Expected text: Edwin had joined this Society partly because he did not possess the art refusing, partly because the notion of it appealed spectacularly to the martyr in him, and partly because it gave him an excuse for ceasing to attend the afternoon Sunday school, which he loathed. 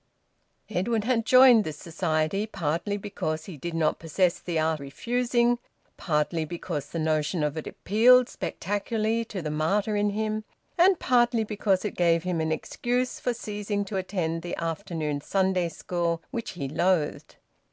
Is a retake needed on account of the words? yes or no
no